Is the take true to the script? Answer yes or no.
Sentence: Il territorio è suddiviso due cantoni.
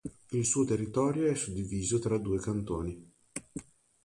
no